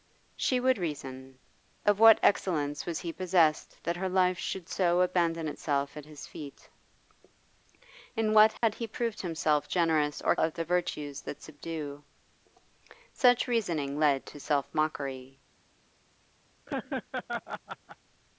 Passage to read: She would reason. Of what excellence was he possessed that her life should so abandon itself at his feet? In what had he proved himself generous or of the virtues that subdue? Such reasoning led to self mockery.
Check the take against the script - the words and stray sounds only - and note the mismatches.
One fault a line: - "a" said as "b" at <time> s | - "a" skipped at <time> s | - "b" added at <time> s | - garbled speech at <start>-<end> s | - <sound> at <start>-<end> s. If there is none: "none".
- dropout at 8.6-8.6 s
- laugh at 16.7-18.0 s